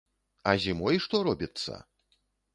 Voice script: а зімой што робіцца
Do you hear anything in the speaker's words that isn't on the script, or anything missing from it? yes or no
no